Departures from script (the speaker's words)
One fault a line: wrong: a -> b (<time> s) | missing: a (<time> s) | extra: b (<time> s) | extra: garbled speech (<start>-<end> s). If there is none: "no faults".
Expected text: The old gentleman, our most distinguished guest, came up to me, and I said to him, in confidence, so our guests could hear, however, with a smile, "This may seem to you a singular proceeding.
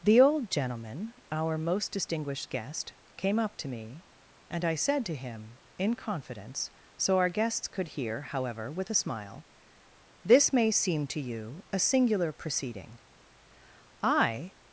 extra: I (14.0 s)